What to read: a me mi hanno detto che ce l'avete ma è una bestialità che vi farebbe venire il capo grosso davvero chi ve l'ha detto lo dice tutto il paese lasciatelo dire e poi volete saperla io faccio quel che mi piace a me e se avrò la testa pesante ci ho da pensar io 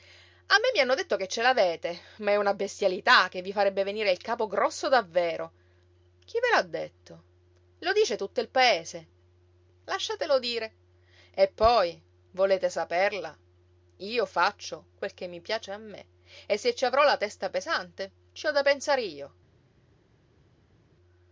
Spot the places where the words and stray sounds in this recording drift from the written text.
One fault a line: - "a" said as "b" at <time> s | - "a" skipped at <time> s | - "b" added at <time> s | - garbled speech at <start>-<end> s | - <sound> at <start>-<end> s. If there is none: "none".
- "ci" added at 16.7 s